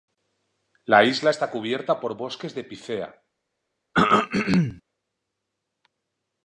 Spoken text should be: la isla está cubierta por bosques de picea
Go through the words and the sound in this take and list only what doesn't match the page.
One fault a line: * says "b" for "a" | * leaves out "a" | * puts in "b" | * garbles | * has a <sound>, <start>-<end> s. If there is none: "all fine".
* has a throat clearing, 3.9-4.8 s